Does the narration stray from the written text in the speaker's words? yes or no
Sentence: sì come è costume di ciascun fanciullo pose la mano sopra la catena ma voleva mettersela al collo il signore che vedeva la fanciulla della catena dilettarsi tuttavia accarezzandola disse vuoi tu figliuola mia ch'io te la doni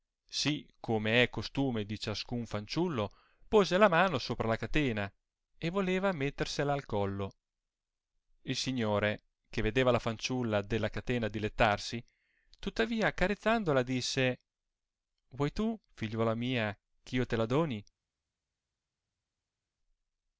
yes